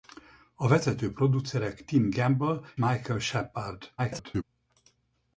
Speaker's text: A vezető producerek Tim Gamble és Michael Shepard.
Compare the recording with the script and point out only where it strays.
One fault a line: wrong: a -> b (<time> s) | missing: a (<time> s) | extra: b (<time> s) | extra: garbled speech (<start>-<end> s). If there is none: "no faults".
missing: és (2.6 s)
extra: garbled speech (4.0-4.4 s)